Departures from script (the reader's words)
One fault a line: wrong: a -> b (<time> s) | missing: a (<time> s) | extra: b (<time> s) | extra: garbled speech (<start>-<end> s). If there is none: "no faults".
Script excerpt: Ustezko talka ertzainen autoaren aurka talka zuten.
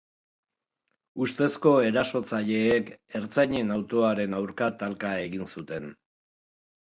wrong: talka -> erasotzaileek (1.9 s)
extra: egin (5.3 s)